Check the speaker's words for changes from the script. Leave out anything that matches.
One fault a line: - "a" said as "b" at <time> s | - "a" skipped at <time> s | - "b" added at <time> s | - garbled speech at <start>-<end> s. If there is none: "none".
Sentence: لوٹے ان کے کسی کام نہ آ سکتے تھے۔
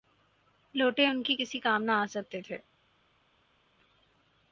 none